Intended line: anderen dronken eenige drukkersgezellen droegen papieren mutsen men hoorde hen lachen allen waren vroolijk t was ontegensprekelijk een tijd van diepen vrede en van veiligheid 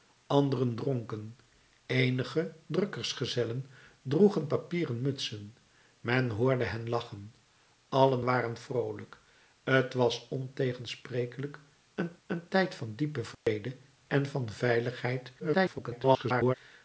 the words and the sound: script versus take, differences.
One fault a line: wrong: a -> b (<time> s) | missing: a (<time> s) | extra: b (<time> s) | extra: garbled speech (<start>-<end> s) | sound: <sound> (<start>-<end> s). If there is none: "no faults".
extra: een (12.3 s)
sound: dropout (13.3-13.5 s)
extra: garbled speech (15.4-16.5 s)